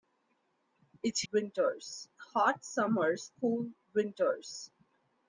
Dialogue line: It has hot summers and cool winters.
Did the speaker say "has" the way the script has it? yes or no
no